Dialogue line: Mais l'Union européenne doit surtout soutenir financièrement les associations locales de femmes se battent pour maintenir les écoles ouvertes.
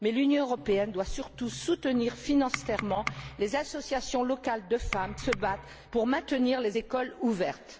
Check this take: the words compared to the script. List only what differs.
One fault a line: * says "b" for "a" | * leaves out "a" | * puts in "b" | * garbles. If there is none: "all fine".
all fine